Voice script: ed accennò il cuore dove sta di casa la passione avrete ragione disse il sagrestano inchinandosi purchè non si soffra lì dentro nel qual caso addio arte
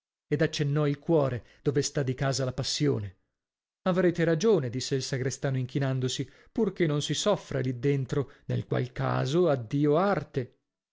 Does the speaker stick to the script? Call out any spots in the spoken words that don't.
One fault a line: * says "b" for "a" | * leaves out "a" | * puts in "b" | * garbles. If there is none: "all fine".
all fine